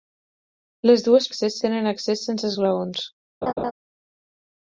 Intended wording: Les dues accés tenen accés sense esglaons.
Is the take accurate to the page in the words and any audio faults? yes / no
no